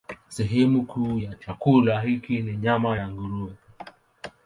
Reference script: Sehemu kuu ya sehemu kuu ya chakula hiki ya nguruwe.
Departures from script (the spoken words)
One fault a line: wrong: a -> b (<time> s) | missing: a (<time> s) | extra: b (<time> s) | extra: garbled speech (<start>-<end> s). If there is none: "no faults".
wrong: sehemu kuu ya chakula hiki -> chakula hiki ni nyama (1.3 s)